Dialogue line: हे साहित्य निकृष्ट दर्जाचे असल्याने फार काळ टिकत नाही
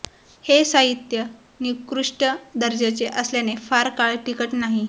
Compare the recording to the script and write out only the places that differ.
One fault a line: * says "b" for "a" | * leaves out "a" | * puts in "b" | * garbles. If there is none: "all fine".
all fine